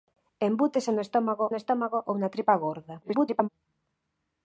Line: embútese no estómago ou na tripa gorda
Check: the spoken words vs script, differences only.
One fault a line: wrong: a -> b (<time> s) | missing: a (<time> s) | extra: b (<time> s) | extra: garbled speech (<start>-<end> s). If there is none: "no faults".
extra: no estómago (1.5 s)
extra: garbled speech (3.0-3.5 s)